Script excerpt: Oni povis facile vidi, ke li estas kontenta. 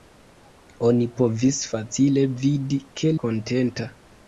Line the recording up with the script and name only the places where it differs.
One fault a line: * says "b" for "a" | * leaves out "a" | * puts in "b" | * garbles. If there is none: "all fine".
* leaves out "li estas"